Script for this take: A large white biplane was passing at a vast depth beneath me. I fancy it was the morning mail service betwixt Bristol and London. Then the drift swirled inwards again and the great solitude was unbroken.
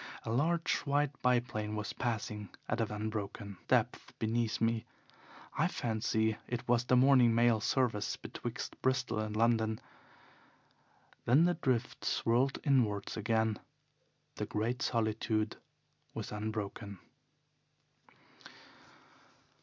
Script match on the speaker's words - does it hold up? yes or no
no